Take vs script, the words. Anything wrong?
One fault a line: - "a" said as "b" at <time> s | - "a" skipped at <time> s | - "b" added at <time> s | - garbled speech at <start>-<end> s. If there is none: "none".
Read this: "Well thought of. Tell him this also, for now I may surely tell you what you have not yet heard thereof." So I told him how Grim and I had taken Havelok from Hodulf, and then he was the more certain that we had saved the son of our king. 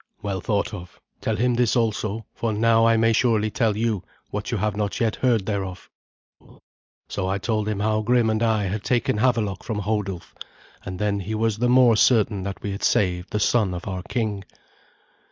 none